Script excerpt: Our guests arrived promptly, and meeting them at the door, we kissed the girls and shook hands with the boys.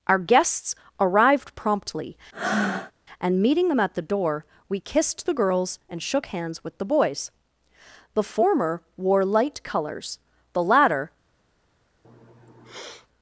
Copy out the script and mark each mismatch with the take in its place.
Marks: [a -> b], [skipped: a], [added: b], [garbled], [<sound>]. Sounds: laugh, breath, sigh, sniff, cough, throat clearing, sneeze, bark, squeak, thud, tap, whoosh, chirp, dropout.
Our guests arrived promptly, [breath] and meeting them at the door, we kissed the girls and shook hands with the boys. [added: The former wore light colors the latter] [sniff]